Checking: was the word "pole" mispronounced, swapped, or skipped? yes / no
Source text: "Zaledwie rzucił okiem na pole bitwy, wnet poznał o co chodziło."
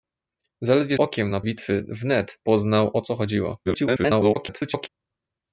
yes